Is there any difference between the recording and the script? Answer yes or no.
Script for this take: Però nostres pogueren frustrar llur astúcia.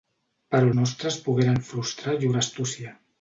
no